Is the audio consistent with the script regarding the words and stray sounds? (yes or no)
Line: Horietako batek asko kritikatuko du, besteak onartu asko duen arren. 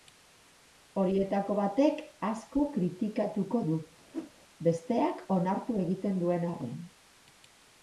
no